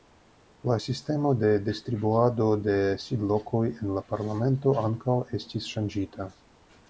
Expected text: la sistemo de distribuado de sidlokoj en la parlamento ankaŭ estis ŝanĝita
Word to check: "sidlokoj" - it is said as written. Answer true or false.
true